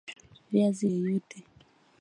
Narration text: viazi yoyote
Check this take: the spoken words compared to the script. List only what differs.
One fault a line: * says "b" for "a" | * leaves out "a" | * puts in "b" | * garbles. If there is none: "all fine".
all fine